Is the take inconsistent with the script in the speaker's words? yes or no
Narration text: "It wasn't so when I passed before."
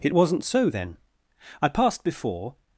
yes